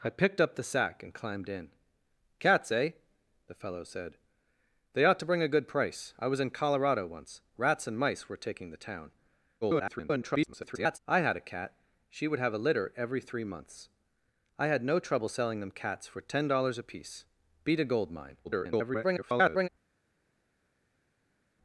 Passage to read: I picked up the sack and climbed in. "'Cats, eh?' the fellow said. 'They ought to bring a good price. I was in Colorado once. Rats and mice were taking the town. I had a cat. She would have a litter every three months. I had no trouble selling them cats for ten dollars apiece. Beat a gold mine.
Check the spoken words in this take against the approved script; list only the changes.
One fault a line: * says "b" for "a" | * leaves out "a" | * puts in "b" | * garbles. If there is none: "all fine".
* garbles
* garbles